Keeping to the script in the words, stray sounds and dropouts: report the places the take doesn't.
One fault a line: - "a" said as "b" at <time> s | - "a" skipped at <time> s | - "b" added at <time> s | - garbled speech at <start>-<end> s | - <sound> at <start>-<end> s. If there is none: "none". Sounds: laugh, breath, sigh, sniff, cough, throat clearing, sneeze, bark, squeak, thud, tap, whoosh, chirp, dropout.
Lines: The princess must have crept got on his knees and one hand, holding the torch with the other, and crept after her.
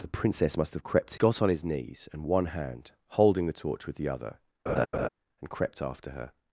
- laugh at 4.7-5.1 s